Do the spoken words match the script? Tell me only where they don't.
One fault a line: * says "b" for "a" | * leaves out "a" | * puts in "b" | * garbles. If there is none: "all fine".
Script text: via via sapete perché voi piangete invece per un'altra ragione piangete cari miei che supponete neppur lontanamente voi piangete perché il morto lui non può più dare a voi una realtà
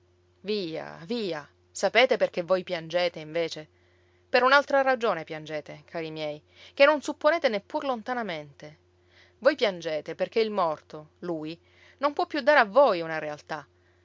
* puts in "non"